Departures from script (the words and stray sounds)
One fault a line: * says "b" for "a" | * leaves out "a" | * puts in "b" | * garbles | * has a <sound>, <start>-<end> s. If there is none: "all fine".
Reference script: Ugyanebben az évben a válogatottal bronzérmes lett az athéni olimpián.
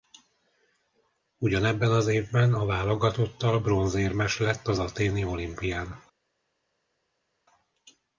all fine